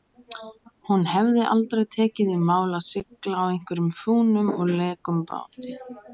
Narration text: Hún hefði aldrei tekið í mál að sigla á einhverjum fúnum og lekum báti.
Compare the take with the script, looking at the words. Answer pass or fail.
pass